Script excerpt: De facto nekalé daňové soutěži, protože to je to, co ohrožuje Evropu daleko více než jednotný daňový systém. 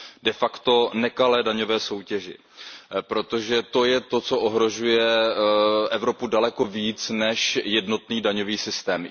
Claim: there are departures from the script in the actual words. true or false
false